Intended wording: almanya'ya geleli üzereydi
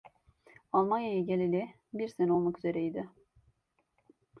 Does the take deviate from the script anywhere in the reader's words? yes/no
yes